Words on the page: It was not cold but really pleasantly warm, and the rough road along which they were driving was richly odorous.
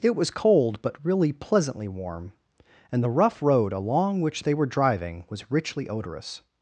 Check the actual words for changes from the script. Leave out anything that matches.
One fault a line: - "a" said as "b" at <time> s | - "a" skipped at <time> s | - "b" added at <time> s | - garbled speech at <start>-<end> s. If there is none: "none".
- "not" skipped at 0.3 s